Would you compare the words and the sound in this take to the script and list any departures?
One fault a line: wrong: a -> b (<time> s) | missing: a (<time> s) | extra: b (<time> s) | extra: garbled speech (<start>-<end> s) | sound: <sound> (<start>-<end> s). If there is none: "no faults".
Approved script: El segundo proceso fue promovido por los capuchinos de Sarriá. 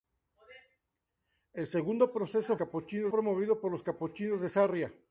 wrong: fue -> capuchinos (2.5 s)